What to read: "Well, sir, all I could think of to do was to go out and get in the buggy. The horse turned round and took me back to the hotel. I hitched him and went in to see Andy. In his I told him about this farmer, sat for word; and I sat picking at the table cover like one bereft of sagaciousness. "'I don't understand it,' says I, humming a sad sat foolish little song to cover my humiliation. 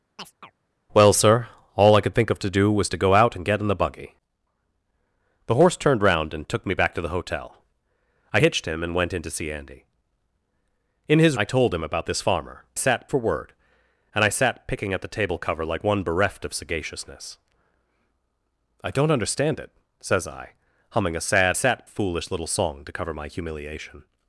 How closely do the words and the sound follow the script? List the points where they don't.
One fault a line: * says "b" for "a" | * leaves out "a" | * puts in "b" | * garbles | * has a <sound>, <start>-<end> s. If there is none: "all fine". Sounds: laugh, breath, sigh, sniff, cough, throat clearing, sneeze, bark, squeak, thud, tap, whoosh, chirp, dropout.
* has a chirp, 0.2-0.5 s